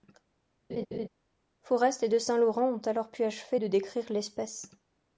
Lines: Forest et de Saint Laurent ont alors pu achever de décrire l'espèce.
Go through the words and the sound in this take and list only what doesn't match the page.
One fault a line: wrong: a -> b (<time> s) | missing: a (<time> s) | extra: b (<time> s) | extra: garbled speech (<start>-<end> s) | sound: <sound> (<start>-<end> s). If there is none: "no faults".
sound: laugh (0.7-1.1 s)